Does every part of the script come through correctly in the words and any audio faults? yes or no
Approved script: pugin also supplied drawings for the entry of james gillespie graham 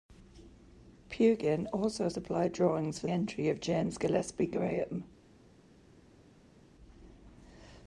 no